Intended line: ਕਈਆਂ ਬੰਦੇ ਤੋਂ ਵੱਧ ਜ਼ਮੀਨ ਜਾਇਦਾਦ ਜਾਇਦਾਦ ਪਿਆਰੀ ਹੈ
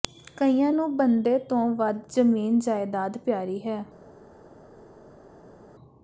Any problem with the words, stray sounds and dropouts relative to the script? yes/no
yes